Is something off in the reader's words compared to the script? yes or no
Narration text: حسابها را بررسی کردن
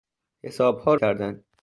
yes